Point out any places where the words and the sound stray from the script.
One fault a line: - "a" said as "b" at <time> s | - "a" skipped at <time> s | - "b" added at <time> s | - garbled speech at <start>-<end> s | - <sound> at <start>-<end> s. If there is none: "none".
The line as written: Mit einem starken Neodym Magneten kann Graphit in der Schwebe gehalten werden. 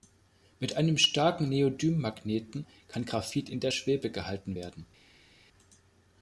none